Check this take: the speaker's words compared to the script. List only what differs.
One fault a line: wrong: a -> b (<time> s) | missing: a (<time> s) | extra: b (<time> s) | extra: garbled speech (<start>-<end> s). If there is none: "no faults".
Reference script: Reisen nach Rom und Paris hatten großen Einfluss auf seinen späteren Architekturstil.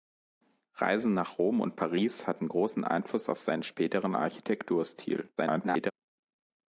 extra: garbled speech (5.4-5.9 s)